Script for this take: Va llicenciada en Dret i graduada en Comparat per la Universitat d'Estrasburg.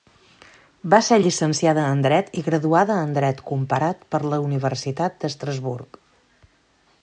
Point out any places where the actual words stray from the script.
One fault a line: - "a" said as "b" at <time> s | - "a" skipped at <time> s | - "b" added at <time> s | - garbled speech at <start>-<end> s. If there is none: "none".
- "ser" added at 1.1 s
- "Dret" added at 3.2 s